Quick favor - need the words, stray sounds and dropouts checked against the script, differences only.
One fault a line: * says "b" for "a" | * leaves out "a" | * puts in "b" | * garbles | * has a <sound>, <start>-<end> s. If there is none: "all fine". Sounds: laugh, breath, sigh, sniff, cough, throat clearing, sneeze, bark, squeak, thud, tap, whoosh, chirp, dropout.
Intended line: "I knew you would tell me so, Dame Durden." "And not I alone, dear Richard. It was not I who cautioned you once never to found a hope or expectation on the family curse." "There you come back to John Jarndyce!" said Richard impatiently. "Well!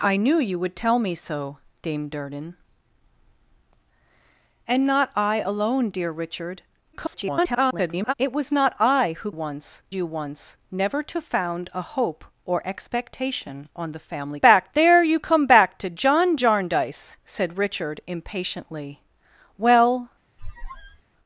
* garbles
* says "once" for "cautioned"
* says "back" for "curse"
* has a squeak, 20.4-21.0 s